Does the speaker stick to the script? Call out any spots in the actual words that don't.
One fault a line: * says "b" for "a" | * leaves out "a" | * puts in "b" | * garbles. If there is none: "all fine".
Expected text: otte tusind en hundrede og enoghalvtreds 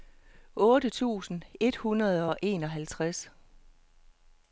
* says "et" for "en"